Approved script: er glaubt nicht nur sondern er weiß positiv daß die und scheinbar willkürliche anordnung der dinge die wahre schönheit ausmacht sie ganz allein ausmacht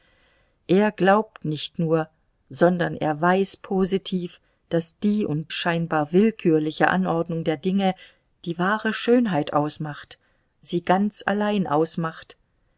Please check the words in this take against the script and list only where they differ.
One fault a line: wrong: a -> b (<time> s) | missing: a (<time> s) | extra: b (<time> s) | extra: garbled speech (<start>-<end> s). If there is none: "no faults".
no faults